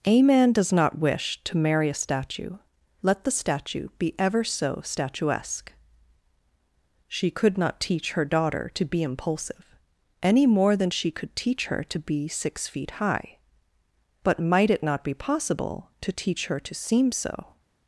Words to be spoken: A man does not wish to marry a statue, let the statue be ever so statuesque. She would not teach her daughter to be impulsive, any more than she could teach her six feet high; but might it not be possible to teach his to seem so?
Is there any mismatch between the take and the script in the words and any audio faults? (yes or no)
yes